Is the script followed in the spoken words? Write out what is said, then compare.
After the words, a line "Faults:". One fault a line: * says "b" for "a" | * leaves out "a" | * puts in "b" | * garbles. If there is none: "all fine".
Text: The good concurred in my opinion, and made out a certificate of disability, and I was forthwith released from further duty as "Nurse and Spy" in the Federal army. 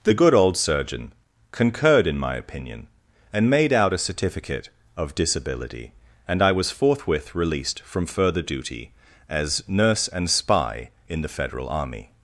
The good old surgeon concurred in my opinion, and made out a certificate of disability, and I was forthwith released from further duty as "Nurse and Spy" in the Federal army.
Faults:
* puts in "old surgeon"